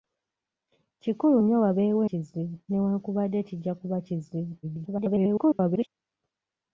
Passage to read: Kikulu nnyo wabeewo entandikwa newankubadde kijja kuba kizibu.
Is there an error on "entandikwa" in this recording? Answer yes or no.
yes